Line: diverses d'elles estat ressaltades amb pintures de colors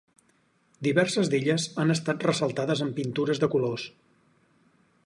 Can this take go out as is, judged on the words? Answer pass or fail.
fail